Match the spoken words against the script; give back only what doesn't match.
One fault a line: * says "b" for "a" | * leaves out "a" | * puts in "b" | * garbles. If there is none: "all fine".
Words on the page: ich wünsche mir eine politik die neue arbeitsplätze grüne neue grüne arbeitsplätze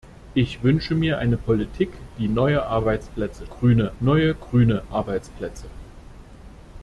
all fine